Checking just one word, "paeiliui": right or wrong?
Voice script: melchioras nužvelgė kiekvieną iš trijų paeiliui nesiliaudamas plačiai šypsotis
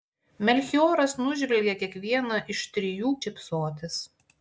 wrong